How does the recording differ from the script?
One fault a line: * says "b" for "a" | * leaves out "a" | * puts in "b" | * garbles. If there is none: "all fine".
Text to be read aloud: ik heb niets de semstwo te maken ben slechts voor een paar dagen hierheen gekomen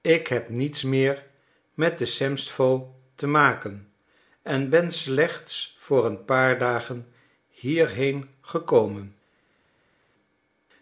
* puts in "meer met"
* puts in "en"